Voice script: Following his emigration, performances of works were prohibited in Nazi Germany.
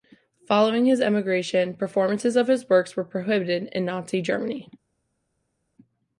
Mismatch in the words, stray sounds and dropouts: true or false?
true